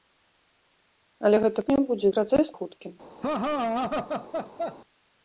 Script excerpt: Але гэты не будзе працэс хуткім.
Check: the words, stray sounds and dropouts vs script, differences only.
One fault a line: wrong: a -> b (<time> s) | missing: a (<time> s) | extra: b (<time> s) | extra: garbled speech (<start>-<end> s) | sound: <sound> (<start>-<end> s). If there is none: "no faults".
sound: laugh (3.2-4.8 s)